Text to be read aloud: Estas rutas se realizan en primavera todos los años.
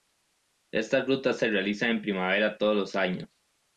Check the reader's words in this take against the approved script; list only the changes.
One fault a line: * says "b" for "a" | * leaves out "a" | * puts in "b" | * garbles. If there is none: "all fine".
all fine